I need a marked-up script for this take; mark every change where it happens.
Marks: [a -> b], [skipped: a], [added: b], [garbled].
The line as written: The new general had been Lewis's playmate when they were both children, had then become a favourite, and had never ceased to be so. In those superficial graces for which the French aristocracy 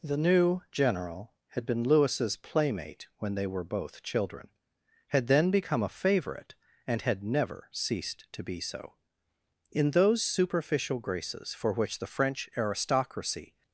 The new general had been Lewis's playmate when they were both children, had then become a favourite, and had never ceased to be so. In those superficial graces for which the French aristocracy